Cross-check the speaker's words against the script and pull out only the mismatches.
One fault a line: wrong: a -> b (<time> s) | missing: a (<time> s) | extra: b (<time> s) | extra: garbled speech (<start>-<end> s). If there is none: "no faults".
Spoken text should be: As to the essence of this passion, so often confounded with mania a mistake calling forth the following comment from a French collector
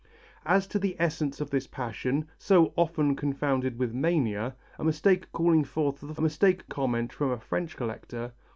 wrong: following -> mistake (6.2 s)